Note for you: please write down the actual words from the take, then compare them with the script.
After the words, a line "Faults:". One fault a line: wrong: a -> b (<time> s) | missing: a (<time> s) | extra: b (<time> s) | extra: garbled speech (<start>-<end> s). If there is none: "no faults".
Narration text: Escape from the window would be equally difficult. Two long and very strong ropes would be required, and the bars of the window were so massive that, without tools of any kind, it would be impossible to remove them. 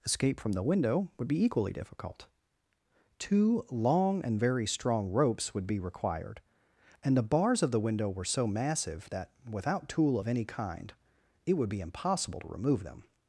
Escape from the window would be equally difficult. Two long and very strong ropes would be required, and the bars of the window were so massive that, without tool of any kind, it would be impossible to remove them.
Faults:
wrong: tools -> tool (9.9 s)